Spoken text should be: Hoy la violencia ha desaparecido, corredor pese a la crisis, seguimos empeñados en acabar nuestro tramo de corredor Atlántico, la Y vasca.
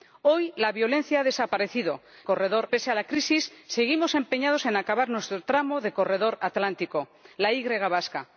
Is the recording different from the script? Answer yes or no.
no